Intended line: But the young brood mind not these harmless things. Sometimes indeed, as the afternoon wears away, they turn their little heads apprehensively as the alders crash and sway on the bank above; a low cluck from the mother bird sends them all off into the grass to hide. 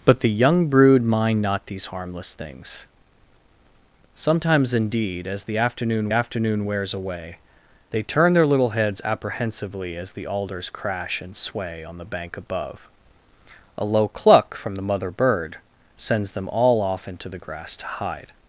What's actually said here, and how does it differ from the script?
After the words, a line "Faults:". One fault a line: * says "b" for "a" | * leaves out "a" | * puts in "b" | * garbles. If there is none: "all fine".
But the young brood mind not these harmless things. Sometimes indeed, as the afternoon afternoon wears away, they turn their little heads apprehensively as the alders crash and sway on the bank above; a low cluck from the mother bird sends them all off into the grass to hide.
Faults:
* puts in "afternoon"